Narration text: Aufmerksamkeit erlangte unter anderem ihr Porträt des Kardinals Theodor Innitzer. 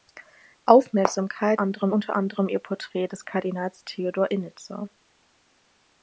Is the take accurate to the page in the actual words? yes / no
no